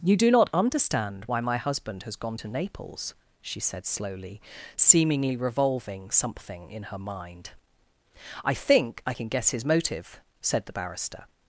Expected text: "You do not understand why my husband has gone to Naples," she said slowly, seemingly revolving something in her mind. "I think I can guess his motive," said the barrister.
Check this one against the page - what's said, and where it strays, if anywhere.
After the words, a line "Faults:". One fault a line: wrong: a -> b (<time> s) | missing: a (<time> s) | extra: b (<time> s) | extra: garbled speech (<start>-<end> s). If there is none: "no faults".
"You do not understand why my husband has gone to Naples," she said slowly, seemingly revolving something in her mind. "I think I can guess his motive," said the barrister.
Faults:
no faults